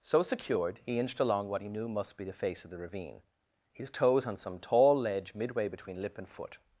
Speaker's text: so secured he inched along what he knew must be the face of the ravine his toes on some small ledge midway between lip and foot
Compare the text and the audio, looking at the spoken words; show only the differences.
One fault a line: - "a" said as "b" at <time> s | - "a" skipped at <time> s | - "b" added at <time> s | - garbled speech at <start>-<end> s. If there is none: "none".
- "small" said as "tall" at 4.6 s